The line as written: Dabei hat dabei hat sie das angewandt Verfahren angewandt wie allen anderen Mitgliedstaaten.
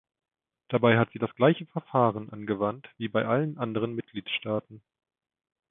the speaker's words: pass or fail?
fail